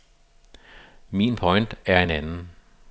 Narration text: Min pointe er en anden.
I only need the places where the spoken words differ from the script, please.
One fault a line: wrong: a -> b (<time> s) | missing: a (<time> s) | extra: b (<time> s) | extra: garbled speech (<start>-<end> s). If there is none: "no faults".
no faults